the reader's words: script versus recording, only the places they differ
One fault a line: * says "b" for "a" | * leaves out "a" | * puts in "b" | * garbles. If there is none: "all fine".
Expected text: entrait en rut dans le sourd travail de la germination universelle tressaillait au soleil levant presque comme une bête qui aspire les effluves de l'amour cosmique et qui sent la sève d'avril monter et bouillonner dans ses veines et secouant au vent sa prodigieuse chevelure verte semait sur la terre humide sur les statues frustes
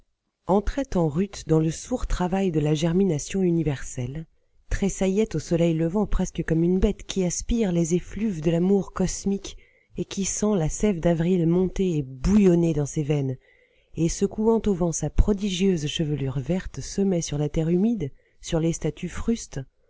all fine